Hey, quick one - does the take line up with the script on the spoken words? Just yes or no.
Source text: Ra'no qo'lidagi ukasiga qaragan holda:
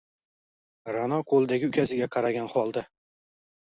yes